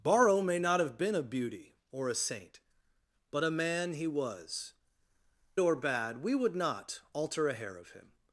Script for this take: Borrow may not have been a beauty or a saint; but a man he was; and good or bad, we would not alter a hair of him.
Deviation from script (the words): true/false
true